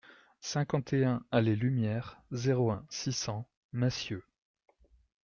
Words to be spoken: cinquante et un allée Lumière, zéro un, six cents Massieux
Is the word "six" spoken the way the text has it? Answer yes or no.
yes